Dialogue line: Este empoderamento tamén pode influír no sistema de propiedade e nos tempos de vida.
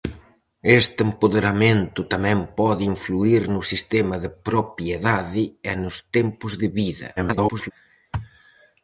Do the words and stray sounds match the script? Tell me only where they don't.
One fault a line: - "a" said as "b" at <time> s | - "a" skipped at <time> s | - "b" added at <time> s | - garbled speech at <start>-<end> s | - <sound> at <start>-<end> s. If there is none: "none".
- garbled speech at 7.2-7.7 s